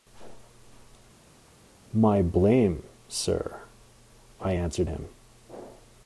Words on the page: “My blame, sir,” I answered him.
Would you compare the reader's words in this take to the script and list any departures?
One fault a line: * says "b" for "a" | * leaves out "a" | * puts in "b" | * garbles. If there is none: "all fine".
all fine